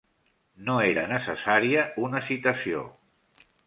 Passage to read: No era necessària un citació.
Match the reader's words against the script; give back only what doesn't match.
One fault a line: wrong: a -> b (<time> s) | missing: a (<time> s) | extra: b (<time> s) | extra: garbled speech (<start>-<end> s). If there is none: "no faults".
wrong: un -> una (2.1 s)